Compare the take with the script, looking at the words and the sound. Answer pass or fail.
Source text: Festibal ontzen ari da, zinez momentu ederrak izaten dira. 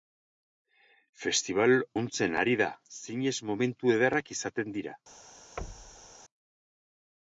fail